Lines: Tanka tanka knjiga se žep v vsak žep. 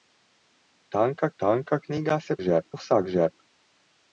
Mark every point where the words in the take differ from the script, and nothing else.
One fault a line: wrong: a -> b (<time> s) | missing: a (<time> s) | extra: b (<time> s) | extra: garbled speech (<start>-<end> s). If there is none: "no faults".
no faults